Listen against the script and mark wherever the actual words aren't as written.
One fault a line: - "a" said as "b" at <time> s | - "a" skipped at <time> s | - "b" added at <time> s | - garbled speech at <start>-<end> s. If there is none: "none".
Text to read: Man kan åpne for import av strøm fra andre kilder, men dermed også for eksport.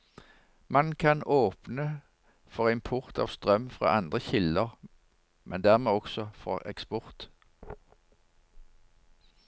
none